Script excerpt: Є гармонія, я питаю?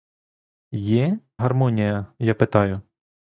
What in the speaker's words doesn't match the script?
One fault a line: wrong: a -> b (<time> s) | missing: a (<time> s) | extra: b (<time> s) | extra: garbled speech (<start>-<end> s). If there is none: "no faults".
no faults